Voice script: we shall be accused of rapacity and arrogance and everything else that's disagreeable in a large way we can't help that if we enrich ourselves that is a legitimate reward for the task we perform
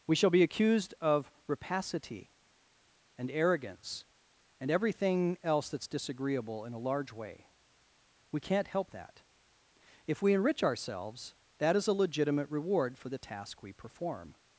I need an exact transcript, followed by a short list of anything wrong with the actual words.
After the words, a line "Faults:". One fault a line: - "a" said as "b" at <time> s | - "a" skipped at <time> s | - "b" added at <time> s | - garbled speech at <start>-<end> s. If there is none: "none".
we shall be accused of rapacity and arrogance and everything else that's disagreeable in a large way we can't help that if we enrich ourselves that is a legitimate reward for the task we perform
Faults:
none